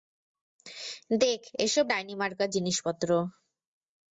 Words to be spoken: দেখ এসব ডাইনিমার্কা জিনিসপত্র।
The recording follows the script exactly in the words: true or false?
true